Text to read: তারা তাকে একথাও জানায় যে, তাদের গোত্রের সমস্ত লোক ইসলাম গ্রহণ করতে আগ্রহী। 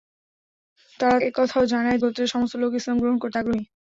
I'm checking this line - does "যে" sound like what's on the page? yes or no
no